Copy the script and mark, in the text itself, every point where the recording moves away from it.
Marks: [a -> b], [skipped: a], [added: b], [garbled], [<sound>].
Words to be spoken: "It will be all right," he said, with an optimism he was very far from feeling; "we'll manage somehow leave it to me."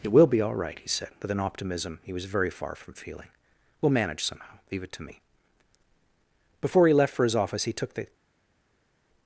"It will be all right," he said, with an optimism he was very far from feeling; "we'll manage somehow leave it to me." [added: Before he left for his office he took the]